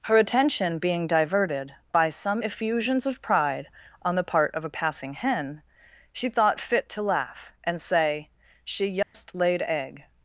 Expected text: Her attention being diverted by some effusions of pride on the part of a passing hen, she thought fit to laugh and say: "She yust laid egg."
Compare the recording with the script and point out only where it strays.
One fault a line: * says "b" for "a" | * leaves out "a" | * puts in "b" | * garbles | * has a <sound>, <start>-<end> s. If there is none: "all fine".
* has a dropout, 9.0-9.1 s